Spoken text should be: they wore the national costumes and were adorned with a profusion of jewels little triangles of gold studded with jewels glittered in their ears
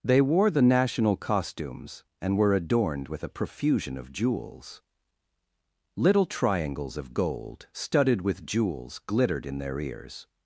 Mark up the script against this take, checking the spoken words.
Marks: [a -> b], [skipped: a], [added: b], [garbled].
they wore the national costumes and were adorned with a profusion of jewels little triangles of gold studded with jewels glittered in their ears